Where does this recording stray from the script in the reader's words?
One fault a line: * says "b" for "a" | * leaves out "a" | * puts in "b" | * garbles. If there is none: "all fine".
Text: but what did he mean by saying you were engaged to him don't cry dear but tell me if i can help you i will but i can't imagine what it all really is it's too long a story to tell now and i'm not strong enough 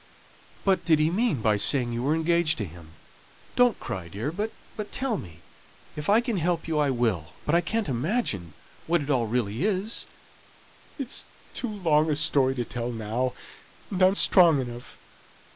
* leaves out "what"
* leaves out "not"